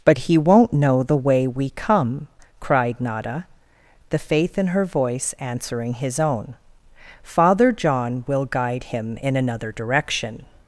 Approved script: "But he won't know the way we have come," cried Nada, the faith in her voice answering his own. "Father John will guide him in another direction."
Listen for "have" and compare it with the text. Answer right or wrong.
wrong